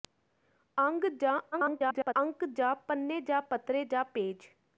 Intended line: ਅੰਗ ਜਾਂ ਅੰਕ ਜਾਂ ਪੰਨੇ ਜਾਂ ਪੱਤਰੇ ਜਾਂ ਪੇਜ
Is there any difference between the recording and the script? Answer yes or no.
yes